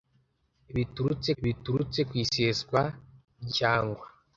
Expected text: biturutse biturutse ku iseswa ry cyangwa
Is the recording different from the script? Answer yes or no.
no